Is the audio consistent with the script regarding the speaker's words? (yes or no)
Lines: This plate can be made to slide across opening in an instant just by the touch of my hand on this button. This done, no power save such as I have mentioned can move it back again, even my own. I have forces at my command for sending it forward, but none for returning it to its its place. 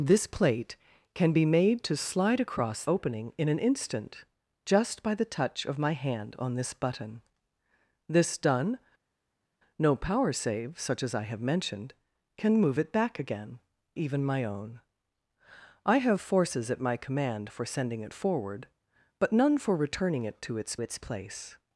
yes